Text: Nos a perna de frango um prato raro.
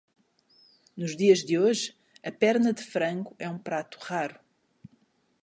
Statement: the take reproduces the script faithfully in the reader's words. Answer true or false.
false